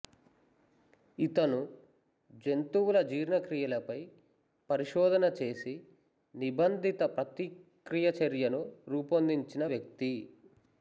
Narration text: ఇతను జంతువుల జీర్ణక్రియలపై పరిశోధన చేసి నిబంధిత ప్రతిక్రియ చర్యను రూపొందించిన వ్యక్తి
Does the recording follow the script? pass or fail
pass